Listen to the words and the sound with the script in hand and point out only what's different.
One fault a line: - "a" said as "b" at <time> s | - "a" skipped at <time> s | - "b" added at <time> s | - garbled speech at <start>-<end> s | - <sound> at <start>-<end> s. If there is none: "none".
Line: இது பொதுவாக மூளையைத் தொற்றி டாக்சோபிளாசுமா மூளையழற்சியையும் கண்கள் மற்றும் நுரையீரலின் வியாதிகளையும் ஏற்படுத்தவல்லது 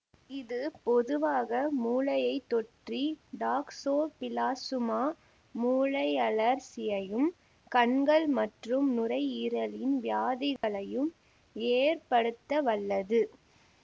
- dropout at 10.6-10.6 s